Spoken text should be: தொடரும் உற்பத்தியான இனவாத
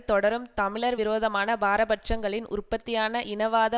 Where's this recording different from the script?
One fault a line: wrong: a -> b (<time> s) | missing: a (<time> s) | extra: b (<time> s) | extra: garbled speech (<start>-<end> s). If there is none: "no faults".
extra: தமிழர் விரோதமான பாரபட்சங்களின் (0.6 s)